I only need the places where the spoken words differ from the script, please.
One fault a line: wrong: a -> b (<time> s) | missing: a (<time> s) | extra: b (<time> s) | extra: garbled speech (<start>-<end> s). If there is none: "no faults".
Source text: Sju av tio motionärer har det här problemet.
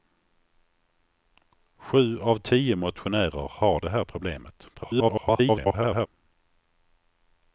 extra: garbled speech (4.7-6.1 s)